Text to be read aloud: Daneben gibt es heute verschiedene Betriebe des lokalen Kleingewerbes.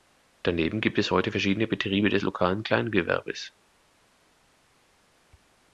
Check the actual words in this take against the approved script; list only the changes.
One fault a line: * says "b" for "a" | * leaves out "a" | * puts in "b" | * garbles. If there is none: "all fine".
all fine